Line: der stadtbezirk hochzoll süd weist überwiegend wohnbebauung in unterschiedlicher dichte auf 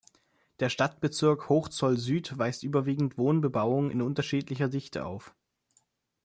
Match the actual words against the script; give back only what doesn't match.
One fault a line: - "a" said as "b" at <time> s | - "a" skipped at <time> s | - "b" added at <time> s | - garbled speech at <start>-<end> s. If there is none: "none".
none